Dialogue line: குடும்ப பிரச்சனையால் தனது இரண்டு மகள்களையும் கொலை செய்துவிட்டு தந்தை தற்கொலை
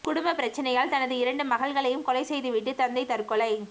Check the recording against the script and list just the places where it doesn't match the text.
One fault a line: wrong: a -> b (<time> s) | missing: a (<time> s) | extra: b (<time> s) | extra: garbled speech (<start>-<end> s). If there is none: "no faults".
no faults